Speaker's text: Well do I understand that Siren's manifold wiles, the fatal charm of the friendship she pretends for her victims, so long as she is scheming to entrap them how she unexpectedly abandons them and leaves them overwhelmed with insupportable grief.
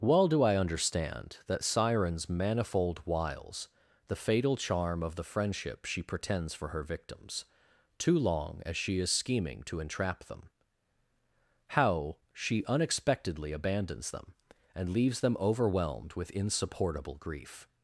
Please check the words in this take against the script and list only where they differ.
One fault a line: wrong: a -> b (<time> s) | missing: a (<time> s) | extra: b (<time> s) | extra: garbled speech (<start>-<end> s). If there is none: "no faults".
wrong: so -> too (8.0 s)